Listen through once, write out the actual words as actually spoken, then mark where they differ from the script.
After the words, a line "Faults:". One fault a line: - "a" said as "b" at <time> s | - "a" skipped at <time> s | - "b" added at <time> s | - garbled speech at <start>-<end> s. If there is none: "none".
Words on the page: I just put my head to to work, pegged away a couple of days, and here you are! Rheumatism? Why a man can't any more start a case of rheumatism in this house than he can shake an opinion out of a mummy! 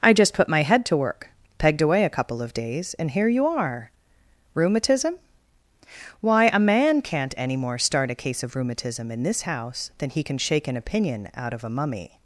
I just put my head to work, pegged away a couple of days, and here you are! Rheumatism? Why a man can't any more start a case of rheumatism in this house than he can shake an opinion out of a mummy!
Faults:
- "to" skipped at 1.0 s